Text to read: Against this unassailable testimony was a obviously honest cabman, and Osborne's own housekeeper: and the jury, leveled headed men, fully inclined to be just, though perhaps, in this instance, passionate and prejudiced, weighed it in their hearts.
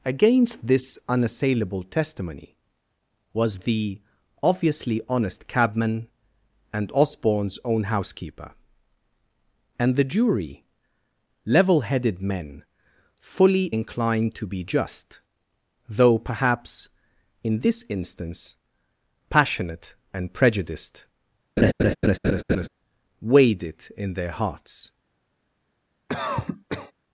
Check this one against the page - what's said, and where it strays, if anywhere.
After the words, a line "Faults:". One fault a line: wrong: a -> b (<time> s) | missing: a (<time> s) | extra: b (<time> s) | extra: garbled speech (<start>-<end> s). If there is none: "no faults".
Against this unassailable testimony was the obviously honest cabman, and Osborne's own housekeeper: and the jury, level headed men, fully inclined to be just, though perhaps, in this instance, passionate and prejudiced, weighed it in their hearts.
Faults:
wrong: a -> the (3.6 s)
wrong: leveled -> level (11.4 s)